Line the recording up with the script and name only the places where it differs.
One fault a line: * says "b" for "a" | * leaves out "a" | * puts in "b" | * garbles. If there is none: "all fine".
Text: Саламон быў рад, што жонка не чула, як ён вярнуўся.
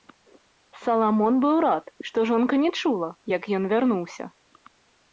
all fine